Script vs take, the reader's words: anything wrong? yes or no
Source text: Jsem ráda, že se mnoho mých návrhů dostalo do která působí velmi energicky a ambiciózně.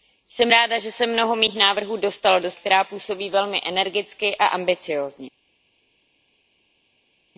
no